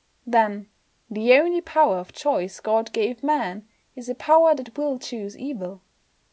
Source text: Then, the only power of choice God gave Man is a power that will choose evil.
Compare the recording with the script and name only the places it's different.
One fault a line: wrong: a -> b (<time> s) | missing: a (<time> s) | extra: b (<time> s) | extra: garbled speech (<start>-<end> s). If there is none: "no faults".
no faults